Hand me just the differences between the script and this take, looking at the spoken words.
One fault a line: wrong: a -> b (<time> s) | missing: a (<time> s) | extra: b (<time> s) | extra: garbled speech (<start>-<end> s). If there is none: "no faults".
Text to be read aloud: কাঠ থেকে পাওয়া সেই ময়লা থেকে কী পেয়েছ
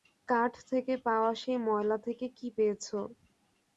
no faults